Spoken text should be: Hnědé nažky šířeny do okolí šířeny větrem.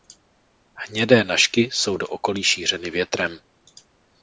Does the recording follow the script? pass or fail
fail